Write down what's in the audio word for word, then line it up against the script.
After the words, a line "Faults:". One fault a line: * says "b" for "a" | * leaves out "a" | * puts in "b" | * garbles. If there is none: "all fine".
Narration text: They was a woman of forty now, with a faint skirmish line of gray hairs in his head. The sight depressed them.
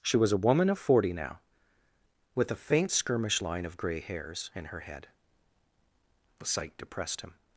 She was a woman of forty now, with a faint skirmish line of gray hairs in her head. The sight depressed him.
Faults:
* says "She" for "They"
* says "her" for "his"
* says "him" for "them"